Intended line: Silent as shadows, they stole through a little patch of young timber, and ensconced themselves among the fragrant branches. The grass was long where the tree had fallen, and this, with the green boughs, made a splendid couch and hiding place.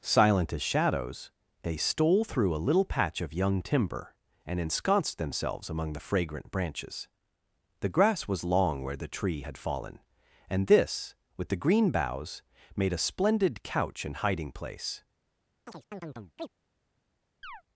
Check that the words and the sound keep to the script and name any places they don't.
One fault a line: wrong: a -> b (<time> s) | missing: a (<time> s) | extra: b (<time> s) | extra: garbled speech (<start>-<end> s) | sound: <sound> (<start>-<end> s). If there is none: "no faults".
sound: chirp (15.7-16.5 s)
sound: chirp (17.4-17.6 s)